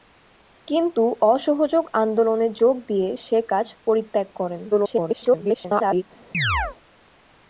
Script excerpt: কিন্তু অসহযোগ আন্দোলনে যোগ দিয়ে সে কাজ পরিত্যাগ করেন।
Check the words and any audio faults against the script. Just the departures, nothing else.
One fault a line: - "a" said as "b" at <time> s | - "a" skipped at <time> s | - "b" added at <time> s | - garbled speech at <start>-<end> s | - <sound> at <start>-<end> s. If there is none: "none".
- garbled speech at 4.7-6.0 s
- chirp at 6.3-6.8 s